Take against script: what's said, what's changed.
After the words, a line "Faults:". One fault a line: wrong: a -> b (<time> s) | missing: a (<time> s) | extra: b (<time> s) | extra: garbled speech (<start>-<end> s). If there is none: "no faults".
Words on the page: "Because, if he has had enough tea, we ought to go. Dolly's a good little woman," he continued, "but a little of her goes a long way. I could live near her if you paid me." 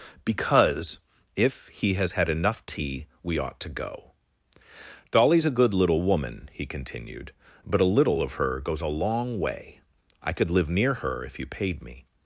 "Because, if he has had enough tea, we ought to go. Dolly's a good little woman," he continued, "but a little of her goes a long way. I could live near her if you paid me."
Faults:
no faults